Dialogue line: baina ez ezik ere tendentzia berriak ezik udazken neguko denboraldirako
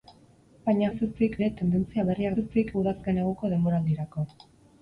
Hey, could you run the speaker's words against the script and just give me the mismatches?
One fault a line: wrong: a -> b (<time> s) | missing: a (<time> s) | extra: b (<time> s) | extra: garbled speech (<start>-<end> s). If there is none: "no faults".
no faults